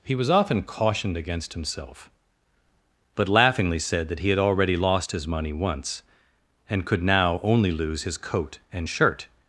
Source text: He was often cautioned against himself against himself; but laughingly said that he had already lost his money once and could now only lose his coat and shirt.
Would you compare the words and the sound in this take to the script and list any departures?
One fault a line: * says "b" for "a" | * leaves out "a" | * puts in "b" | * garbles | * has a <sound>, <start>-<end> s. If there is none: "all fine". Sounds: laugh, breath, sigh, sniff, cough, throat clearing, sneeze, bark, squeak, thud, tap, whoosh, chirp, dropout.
* leaves out "against himself"